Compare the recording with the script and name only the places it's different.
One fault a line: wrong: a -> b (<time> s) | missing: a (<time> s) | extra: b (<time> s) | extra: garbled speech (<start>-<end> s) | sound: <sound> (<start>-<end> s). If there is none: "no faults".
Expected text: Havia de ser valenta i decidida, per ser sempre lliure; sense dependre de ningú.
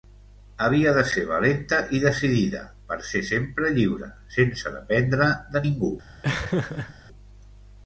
sound: laugh (6.2-6.9 s)